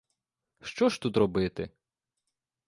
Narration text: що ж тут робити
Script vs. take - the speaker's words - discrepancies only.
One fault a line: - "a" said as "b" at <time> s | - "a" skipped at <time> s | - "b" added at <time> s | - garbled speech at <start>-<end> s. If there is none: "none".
none